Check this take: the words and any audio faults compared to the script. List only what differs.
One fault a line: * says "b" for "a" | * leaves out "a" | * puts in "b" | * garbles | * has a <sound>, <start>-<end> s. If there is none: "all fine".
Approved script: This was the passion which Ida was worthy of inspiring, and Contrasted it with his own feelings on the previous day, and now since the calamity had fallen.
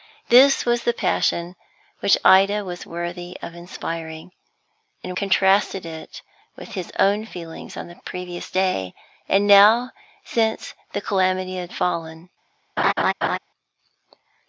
* has a laugh, 12.8-13.4 s